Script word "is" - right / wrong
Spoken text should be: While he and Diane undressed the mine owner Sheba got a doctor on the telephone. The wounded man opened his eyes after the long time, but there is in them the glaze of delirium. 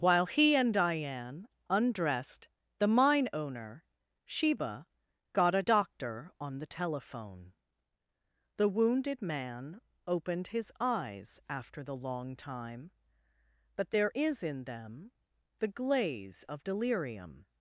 right